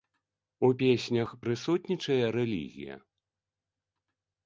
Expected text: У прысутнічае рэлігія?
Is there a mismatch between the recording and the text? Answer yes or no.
yes